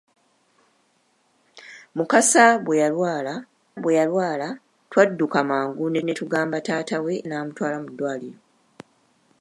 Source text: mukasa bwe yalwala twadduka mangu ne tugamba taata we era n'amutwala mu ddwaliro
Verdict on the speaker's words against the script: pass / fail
fail